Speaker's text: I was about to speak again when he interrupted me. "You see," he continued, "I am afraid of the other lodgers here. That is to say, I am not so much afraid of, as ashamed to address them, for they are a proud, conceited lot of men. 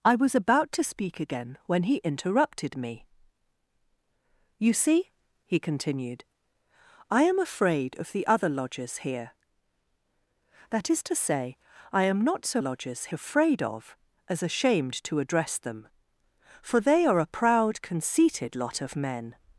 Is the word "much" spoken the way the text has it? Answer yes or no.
no